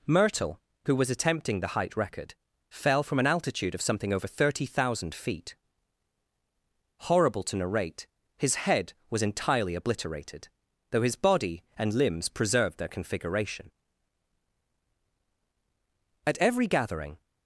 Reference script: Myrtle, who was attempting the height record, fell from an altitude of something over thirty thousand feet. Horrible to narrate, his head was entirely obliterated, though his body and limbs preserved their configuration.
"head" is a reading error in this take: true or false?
false